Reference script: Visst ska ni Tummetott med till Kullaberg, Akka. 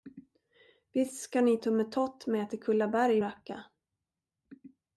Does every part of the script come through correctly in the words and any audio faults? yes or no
yes